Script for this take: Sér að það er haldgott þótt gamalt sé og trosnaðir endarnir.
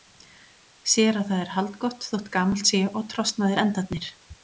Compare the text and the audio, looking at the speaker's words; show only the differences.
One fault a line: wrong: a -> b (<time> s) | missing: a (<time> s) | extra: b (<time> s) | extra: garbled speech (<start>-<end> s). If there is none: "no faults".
no faults